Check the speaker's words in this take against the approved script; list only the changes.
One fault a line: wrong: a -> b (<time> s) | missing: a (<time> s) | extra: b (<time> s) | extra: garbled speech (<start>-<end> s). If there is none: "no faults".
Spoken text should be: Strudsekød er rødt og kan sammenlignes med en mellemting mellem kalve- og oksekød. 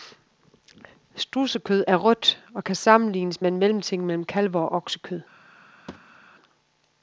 no faults